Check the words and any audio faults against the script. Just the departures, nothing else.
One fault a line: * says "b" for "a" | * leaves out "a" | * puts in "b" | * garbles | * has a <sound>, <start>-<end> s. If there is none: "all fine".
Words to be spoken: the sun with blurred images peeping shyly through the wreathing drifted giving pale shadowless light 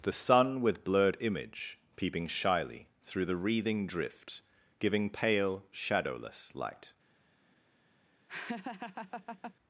* says "image" for "images"
* says "drift" for "drifted"
* has a laugh, 8.3-9.5 s